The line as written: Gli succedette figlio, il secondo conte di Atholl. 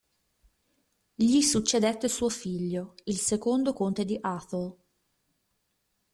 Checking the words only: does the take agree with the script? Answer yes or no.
no